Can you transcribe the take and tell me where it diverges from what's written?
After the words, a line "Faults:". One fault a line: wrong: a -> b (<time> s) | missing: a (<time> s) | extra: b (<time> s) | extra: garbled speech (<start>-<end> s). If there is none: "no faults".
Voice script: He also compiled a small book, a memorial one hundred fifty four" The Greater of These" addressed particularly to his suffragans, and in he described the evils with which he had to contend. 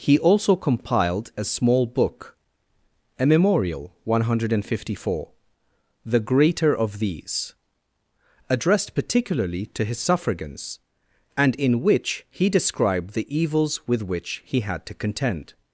He also compiled a small book, a memorial one hundred fifty four" The Greater of These" addressed particularly to his suffragans, and in which he described the evils with which he had to contend.
Faults:
extra: which (11.8 s)